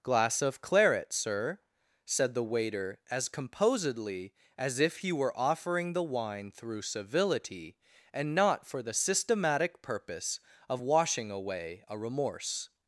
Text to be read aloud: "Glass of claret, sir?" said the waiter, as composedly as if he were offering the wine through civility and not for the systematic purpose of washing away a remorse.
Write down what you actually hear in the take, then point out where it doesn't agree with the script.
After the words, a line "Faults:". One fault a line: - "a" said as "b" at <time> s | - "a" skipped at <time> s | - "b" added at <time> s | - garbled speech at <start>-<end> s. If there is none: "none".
"Glass of claret, sir?" said the waiter, as composedly as if he were offering the wine through civility and not for the systematic purpose of washing away a remorse.
Faults:
none